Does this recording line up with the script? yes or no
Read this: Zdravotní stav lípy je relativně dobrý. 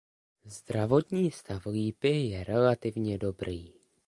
yes